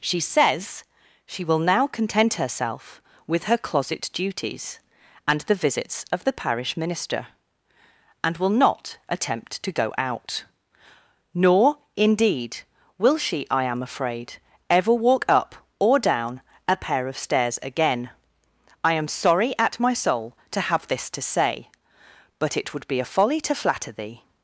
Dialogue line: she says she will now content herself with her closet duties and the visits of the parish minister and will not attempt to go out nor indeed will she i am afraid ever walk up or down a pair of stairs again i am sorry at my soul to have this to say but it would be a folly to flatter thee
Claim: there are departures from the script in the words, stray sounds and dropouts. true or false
false